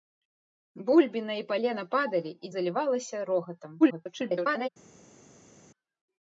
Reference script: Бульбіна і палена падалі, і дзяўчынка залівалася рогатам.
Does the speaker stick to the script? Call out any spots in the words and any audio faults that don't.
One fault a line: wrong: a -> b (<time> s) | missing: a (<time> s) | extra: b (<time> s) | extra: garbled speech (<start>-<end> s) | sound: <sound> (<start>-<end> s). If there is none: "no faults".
missing: дзяўчынка (2.5 s)
extra: garbled speech (3.8-4.7 s)